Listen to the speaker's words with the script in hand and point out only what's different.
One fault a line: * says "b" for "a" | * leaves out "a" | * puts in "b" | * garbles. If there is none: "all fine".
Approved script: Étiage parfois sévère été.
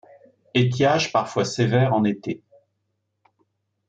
* puts in "en"